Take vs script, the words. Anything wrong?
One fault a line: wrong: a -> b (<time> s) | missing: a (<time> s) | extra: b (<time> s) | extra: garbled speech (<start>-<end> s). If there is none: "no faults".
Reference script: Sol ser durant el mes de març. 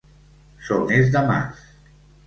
missing: ser durant el (0.8 s)